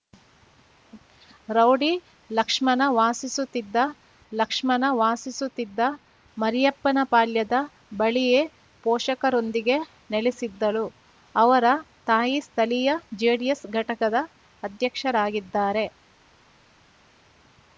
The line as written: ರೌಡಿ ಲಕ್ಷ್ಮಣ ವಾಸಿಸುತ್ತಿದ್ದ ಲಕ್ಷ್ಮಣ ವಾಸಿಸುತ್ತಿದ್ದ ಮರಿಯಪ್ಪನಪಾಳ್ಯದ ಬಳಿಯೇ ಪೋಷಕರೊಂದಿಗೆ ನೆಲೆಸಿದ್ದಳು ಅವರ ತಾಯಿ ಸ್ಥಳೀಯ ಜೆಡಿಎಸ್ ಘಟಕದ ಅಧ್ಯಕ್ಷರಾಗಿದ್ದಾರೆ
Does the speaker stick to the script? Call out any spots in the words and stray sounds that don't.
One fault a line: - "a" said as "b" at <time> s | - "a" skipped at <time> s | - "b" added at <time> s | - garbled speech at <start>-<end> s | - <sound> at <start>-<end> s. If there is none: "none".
none